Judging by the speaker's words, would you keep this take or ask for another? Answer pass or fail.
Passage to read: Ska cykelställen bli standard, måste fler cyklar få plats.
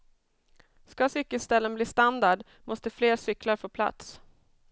pass